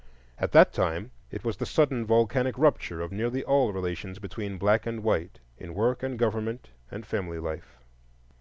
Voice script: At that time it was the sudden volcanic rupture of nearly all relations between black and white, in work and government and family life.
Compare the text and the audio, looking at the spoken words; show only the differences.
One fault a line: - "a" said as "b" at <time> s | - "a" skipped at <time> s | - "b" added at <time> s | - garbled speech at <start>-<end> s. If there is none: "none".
none